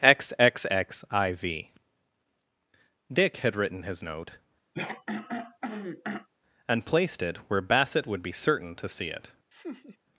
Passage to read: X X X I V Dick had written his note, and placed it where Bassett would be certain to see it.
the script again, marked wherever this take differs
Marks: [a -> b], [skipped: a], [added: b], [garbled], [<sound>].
X X X I V Dick had written his note, [throat clearing] and placed it where Bassett would be certain to see it. [laugh]